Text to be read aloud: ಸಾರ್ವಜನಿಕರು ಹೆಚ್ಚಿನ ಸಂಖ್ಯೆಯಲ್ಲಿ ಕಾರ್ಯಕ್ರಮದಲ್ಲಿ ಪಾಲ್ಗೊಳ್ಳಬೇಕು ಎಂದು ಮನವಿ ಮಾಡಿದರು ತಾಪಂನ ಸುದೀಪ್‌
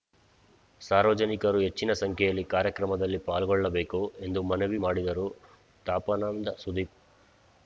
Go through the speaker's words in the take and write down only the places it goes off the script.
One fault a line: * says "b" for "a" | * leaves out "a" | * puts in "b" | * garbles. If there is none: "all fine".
all fine